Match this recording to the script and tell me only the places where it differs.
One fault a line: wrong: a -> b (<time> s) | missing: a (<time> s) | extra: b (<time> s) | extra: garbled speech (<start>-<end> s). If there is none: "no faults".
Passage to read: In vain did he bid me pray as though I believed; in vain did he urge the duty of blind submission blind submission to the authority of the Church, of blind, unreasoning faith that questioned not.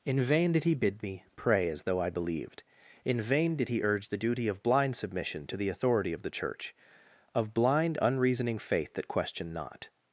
missing: blind submission (5.4 s)